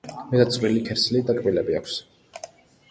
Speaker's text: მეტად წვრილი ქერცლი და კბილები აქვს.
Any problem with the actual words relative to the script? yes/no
no